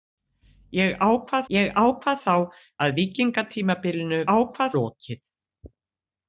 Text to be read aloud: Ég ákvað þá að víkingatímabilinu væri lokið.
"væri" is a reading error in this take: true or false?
true